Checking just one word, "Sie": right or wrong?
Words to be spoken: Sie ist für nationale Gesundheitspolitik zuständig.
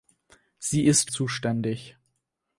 right